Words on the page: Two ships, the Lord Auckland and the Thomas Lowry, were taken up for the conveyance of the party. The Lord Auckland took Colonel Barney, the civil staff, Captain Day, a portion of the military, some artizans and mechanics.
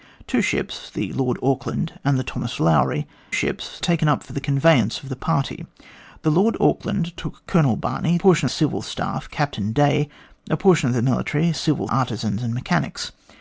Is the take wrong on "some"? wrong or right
wrong